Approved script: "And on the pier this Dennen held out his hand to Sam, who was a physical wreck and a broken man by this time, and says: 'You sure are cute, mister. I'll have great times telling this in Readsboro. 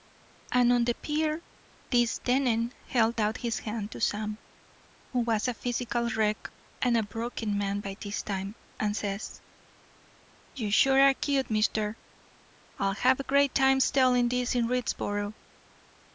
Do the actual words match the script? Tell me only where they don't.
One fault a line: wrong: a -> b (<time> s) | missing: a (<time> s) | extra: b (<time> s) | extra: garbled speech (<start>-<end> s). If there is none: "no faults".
no faults